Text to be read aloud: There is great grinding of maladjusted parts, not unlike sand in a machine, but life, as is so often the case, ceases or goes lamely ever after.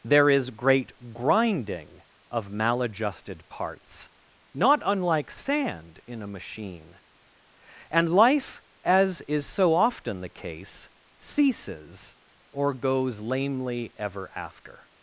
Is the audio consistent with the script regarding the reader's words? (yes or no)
no